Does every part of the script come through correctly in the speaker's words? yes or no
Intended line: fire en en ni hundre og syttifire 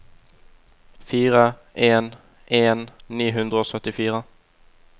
yes